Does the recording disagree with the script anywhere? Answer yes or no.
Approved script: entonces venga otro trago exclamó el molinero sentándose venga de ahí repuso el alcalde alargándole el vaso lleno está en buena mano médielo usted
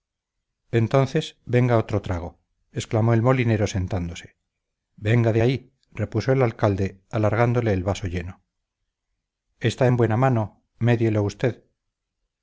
no